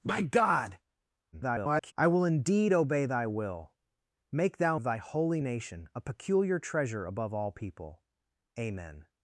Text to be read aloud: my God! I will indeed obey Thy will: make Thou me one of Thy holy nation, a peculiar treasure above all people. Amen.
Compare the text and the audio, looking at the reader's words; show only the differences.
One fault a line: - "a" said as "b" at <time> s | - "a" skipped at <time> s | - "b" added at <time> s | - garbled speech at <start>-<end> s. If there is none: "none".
- garbled speech at 1.3-1.9 s
- "me one" skipped at 4.8 s